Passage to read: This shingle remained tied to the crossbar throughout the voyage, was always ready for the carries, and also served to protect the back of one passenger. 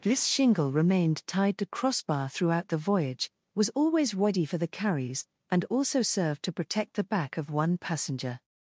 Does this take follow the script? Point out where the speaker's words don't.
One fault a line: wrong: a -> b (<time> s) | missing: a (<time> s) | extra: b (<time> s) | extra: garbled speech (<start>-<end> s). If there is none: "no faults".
missing: the (1.7 s)